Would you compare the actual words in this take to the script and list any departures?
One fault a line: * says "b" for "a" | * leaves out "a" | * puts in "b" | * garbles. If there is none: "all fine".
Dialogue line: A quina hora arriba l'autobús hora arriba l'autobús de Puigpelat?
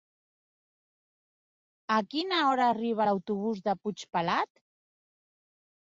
* leaves out "hora arriba l'autobús"